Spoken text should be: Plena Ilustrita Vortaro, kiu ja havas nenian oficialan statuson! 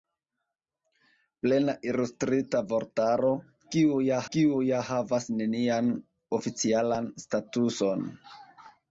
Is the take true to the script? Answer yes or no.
no